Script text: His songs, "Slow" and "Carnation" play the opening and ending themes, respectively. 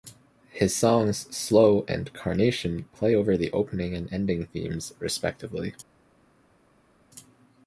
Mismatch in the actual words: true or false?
true